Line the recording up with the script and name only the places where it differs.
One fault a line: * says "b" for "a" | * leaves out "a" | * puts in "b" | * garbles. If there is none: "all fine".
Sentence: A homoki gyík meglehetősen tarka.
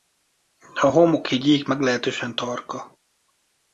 all fine